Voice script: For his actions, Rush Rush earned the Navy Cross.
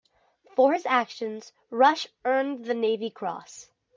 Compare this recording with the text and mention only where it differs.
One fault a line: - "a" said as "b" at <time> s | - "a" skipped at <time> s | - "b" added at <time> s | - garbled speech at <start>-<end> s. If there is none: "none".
- "Rush" skipped at 2.1 s